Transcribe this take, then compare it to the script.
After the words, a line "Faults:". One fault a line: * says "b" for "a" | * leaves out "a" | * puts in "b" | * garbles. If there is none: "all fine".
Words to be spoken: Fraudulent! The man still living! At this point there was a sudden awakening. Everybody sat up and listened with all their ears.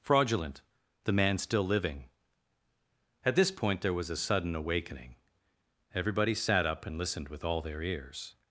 Fraudulent! The man still living! At this point there was a sudden awakening. Everybody sat up and listened with all their ears.
Faults:
all fine